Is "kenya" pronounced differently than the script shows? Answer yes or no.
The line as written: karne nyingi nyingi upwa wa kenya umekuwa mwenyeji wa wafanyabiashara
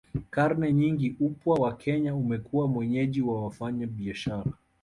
no